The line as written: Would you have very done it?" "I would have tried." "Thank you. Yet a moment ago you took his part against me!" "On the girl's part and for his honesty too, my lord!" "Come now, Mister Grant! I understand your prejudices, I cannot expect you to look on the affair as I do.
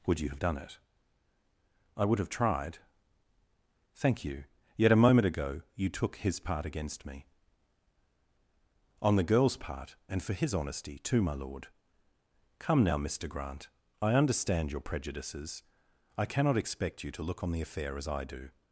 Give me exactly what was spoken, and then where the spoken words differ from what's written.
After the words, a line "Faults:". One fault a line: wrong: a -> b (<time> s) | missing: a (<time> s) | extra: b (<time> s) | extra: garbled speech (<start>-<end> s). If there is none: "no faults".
Would you have done it?" "I would have tried." "Thank you. Yet a moment ago you took his part against me!" "On the girl's part and for his honesty too, my lord!" "Come now, Mister Grant! I understand your prejudices, I cannot expect you to look on the affair as I do.
Faults:
missing: very (0.4 s)